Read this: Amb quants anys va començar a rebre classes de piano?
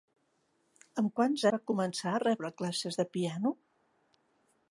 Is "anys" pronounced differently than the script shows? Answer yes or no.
yes